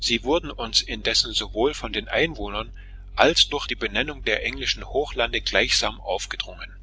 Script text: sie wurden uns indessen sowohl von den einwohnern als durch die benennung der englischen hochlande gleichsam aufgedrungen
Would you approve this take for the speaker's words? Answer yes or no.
yes